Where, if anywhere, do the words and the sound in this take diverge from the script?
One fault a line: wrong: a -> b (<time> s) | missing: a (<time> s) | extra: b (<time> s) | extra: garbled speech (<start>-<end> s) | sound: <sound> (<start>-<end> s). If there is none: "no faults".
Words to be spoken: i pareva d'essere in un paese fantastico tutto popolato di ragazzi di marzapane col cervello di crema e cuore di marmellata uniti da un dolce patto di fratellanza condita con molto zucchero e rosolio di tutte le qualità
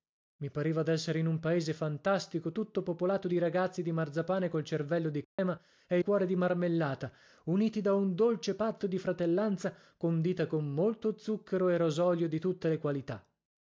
sound: dropout (5.2-5.4 s)